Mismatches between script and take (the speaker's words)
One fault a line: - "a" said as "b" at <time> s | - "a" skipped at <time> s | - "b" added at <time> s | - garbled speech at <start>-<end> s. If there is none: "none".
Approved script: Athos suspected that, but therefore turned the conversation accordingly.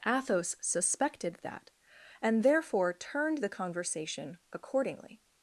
- "but" said as "and" at 2.2 s